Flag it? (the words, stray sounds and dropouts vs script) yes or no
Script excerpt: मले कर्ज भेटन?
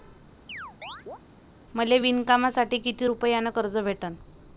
yes